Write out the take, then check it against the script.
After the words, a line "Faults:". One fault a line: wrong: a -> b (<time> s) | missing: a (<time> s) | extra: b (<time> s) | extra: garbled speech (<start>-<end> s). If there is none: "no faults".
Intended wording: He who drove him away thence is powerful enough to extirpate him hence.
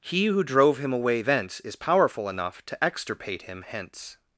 He who drove him away thence is powerful enough to extirpate him hence.
Faults:
no faults